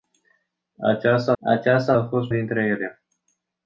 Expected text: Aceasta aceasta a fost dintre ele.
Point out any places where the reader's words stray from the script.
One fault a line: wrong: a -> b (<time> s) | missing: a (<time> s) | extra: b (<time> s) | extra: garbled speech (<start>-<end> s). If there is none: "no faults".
no faults